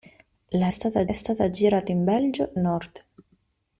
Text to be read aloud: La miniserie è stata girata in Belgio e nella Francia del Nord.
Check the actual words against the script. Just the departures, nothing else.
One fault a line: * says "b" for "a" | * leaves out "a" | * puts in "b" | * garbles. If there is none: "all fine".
* says "stata" for "miniserie"
* leaves out "nella Francia del"